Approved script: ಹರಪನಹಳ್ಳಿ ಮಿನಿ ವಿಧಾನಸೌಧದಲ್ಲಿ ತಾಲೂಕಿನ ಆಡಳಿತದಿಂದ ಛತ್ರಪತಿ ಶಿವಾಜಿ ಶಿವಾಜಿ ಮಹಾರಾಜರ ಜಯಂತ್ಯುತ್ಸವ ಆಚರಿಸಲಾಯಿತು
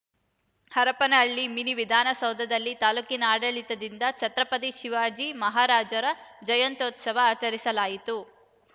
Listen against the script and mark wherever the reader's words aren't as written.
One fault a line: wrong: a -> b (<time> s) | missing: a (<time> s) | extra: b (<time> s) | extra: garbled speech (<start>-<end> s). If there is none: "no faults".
missing: ಶಿವಾಜಿ (5.3 s)